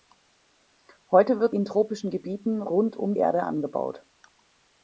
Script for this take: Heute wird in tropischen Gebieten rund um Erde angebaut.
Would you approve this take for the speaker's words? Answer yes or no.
yes